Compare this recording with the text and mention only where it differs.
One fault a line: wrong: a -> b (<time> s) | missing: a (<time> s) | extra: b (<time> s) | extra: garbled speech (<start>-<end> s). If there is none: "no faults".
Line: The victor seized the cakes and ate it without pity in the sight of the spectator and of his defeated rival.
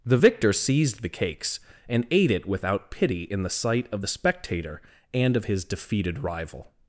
no faults